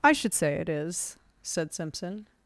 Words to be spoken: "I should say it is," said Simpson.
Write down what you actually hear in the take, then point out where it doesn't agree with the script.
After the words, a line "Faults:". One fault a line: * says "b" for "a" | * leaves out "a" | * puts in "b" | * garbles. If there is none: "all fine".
"I should say it is," said Simpson.
Faults:
all fine